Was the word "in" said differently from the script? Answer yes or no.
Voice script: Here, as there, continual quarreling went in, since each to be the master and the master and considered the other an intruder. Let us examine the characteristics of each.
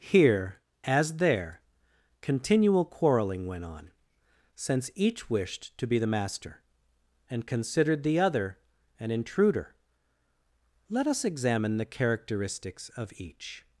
yes